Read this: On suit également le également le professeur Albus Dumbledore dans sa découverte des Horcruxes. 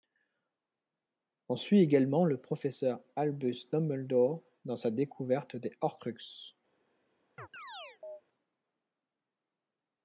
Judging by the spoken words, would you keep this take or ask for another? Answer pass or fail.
fail